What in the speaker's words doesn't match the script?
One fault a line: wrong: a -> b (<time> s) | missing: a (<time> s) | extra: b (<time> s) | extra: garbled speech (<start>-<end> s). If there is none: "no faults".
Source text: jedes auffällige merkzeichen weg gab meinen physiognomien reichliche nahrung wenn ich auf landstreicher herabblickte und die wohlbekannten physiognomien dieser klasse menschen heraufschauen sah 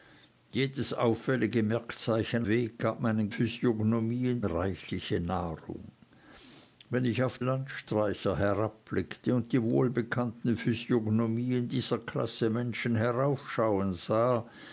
no faults